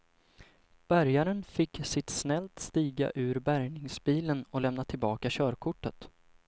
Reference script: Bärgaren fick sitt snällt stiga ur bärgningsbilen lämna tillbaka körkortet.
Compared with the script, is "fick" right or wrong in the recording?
right